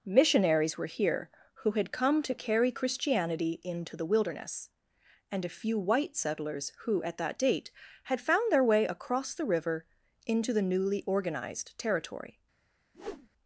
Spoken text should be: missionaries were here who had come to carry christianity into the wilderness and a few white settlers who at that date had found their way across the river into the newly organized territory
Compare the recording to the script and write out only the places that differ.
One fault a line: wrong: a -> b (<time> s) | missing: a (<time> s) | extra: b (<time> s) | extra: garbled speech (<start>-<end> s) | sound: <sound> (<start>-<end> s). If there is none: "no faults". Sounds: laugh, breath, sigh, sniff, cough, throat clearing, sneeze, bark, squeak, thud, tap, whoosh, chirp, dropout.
sound: whoosh (12.9-13.3 s)